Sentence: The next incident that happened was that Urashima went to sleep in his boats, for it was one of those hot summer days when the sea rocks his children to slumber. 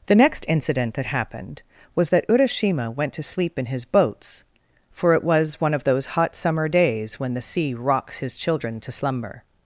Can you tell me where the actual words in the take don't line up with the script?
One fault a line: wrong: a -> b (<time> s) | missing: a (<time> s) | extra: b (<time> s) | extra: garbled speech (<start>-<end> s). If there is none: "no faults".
no faults